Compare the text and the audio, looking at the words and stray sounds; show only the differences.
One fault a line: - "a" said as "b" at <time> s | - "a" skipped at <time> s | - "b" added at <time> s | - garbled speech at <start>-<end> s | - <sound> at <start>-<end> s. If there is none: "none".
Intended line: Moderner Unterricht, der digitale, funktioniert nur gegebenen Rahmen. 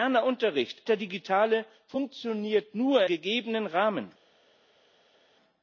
none